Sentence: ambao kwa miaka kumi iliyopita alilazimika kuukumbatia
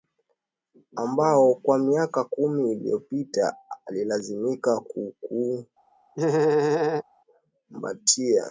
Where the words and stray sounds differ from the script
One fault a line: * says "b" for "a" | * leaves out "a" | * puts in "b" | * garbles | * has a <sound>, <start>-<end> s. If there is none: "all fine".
* has a laugh, 6.1-7.0 s